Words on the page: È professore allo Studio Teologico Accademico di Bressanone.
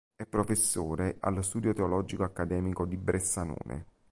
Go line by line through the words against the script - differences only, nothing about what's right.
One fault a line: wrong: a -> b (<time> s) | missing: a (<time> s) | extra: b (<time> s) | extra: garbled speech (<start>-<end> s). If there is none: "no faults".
no faults